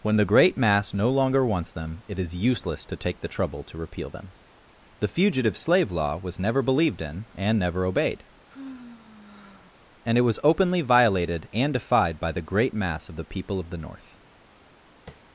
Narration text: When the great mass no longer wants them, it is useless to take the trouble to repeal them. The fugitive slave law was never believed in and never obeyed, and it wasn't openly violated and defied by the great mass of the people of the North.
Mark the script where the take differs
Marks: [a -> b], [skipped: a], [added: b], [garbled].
When the great mass no longer wants them, it is useless to take the trouble to repeal them. The fugitive slave law was never believed in and never obeyed, and it [wasn't -> was] openly violated and defied by the great mass of the people of the North.